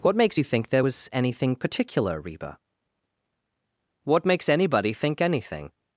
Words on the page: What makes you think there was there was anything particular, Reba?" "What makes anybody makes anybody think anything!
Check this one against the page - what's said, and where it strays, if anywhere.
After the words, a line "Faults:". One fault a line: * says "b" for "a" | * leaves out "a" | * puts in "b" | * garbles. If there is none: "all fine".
What makes you think there was anything particular, Reba?" "What makes anybody think anything!
Faults:
* leaves out "there was"
* leaves out "makes anybody"